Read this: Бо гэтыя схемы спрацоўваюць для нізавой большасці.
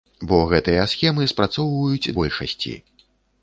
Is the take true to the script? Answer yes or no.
no